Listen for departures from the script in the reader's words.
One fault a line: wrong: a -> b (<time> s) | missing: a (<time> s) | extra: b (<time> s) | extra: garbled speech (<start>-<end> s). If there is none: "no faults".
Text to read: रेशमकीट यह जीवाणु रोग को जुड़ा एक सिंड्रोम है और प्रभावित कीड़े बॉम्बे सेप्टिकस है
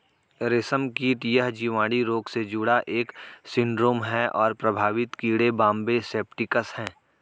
wrong: को -> से (2.3 s)